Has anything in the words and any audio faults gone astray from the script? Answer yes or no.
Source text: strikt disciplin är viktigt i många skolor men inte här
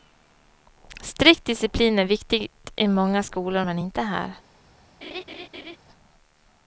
yes